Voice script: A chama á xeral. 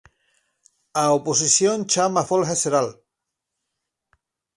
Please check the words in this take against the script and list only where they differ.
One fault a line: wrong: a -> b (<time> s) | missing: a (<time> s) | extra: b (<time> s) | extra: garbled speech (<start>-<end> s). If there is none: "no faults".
extra: oposición (1.2 s)
extra: folga (2.3 s)